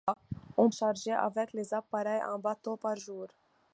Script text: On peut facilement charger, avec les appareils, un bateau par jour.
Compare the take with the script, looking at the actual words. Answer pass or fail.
fail